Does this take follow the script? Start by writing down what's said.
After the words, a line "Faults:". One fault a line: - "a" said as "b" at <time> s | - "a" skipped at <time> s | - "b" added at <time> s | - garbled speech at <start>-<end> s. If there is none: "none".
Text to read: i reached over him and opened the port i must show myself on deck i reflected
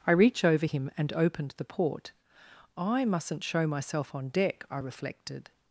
i reach over him and opened the port i mustn't show myself on deck i reflected
Faults:
- "reached" said as "reach" at 0.1 s
- "must" said as "mustn't" at 3.0 s